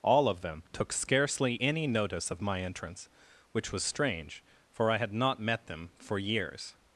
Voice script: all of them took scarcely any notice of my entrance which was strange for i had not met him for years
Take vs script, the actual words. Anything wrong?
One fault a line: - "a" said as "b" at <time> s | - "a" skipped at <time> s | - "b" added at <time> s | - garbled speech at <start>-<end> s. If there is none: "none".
- "him" said as "them" at 5.7 s